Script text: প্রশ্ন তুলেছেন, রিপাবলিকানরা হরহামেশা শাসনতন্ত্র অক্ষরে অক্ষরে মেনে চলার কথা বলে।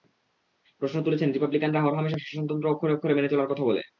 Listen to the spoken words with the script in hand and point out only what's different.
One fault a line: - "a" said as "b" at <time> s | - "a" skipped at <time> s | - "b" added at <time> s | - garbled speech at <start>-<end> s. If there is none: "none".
none